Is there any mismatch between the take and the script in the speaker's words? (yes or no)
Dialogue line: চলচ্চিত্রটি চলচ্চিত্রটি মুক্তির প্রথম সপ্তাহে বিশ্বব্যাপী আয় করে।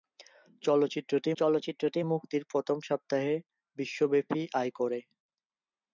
no